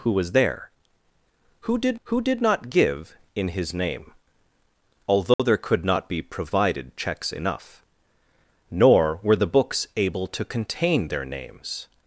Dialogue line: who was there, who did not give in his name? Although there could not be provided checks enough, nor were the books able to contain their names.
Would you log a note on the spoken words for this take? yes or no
yes